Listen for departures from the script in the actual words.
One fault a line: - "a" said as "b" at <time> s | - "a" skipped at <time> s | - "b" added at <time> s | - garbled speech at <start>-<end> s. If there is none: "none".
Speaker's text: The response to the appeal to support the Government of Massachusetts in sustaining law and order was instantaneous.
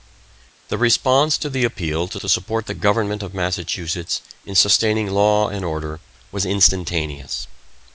- "to" added at 2.2 s